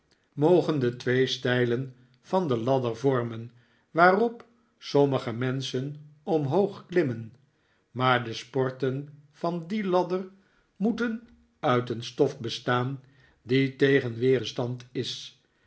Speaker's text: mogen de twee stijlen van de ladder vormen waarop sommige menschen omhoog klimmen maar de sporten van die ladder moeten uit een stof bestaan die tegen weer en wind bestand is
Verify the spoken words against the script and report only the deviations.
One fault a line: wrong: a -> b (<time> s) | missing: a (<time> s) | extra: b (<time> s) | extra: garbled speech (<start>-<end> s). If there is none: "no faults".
missing: en wind (14.4 s)